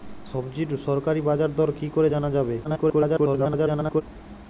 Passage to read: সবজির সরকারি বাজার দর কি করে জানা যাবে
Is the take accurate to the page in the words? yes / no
no